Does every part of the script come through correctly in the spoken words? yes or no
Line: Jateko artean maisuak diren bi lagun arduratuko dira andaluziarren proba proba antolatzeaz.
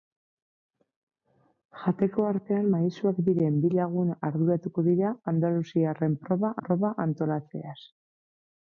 yes